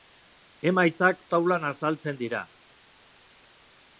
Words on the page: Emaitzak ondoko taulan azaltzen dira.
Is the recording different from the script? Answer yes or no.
yes